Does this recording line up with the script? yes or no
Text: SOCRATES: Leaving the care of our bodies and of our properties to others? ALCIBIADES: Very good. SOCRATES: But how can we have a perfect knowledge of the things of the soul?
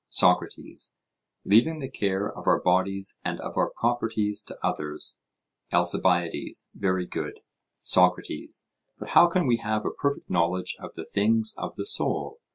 yes